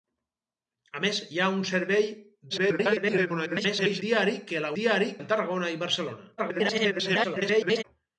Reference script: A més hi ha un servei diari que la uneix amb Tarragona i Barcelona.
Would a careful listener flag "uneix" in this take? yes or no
yes